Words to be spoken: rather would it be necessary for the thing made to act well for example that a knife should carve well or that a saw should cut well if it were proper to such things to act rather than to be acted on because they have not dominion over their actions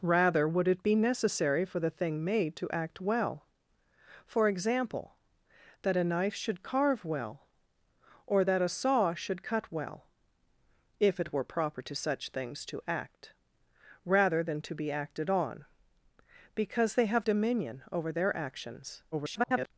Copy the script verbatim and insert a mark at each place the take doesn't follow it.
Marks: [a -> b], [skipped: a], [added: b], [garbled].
rather would it be necessary for the thing made to act well for example that a knife should carve well or that a saw should cut well if it were proper to such things to act rather than to be acted on because they have [skipped: not] dominion over their actions [garbled]